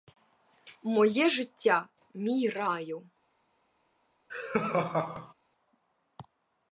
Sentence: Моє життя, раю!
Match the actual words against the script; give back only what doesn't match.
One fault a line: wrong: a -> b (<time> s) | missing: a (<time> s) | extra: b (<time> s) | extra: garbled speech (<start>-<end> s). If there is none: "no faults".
extra: мій (2.1 s)